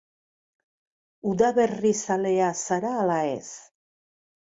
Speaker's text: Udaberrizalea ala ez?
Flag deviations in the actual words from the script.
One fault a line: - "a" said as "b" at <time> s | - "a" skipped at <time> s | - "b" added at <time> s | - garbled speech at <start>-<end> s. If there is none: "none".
- "zara" added at 2.6 s